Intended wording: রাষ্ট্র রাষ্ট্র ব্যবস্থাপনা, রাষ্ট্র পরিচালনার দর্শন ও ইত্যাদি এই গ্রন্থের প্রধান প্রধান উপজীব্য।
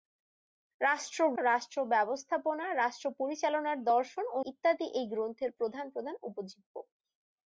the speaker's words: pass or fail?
pass